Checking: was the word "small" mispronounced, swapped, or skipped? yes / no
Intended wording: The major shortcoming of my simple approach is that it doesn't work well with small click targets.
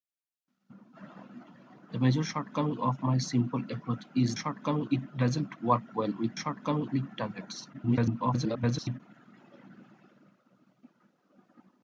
yes